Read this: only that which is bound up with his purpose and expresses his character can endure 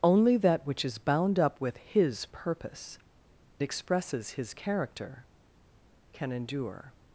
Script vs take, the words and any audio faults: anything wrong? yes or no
yes